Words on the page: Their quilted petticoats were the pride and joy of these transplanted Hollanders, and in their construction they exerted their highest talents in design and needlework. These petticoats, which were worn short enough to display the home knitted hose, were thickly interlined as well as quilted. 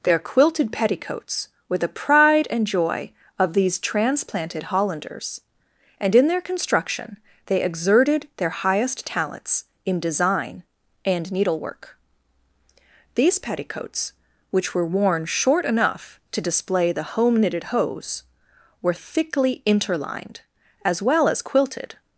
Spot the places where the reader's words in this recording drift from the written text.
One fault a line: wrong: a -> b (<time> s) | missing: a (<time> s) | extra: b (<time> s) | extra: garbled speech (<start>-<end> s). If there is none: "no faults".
no faults